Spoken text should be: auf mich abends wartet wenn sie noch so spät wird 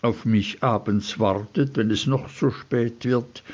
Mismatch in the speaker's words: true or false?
true